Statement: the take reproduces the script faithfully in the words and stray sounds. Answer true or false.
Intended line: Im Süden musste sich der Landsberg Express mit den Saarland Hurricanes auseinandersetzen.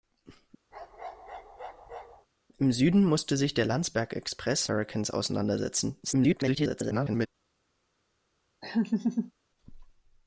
false